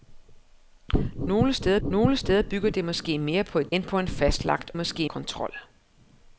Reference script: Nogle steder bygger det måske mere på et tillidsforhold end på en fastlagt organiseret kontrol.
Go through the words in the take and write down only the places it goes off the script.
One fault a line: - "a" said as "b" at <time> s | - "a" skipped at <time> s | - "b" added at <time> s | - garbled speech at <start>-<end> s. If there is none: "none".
- "nogle steder" added at 1.9 s
- "tillidsforhold" skipped at 3.7 s
- "organiseret" said as "måske" at 4.8 s